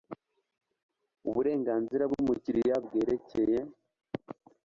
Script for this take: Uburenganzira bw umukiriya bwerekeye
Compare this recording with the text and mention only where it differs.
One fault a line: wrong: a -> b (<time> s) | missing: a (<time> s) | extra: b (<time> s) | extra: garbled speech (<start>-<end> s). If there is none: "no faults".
no faults